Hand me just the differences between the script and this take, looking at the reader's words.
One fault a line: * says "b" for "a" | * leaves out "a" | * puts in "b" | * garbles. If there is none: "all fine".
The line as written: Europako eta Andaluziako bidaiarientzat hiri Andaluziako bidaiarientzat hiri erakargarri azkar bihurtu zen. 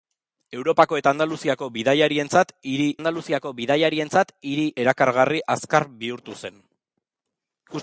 all fine